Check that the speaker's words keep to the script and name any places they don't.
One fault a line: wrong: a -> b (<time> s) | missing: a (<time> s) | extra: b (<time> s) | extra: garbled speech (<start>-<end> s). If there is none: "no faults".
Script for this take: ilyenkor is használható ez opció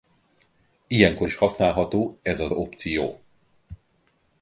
extra: az (2.4 s)